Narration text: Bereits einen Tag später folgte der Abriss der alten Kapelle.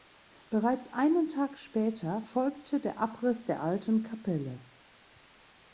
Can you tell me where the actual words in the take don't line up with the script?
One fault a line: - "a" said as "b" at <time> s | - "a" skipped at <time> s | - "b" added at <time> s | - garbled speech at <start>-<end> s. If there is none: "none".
none